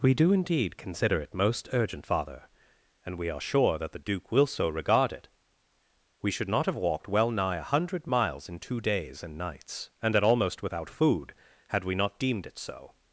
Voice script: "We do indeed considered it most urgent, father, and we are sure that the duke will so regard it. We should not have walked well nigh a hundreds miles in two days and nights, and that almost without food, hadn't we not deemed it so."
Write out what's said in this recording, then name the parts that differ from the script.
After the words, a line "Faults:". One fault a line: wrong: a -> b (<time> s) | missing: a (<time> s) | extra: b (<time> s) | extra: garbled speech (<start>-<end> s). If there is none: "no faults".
"We do indeed consider it most urgent, father, and we are sure that the duke will so regard it. We should not have walked well nigh a hundred miles in two days and nights, and that almost without food, had we not deemed it so."
Faults:
wrong: considered -> consider (0.8 s)
wrong: hundreds -> hundred (7.6 s)
wrong: hadn't -> had (11.7 s)